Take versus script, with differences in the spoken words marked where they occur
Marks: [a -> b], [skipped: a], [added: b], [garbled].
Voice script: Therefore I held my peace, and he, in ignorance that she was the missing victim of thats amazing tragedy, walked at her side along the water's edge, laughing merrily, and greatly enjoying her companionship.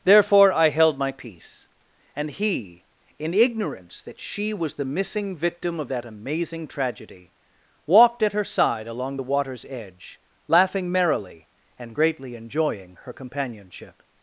Therefore I held my peace, and he, in ignorance that she was the missing victim of [thats -> that] amazing tragedy, walked at her side along the water's edge, laughing merrily, and greatly enjoying her companionship.